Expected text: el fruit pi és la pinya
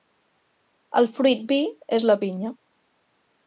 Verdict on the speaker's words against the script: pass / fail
pass